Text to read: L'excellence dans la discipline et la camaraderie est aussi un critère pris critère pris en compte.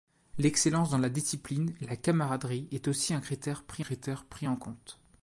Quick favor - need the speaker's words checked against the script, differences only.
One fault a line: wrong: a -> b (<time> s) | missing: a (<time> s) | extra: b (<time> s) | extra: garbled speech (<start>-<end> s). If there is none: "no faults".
no faults